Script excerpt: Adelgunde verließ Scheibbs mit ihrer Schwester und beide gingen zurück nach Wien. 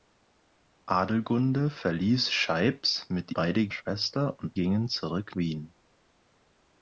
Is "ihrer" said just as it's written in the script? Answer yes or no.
no